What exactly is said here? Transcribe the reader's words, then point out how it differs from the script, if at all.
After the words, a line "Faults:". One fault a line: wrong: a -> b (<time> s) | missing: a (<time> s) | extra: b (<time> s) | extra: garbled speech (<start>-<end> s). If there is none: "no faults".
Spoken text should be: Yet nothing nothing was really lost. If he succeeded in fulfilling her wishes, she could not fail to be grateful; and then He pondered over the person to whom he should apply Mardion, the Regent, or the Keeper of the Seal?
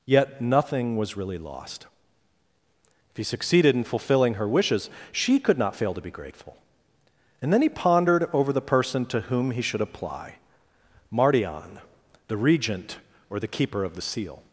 Yet nothing was really lost. If he succeeded in fulfilling her wishes, she could not fail to be grateful; and then He pondered over the person to whom he should apply Mardion, the Regent, or the Keeper of the Seal?
Faults:
missing: nothing (1.0 s)